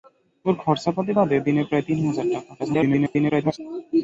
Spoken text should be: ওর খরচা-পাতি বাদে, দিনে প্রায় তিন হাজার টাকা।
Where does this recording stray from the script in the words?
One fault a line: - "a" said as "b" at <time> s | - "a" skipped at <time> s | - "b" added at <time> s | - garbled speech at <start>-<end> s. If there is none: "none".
- garbled speech at 2.6-3.6 s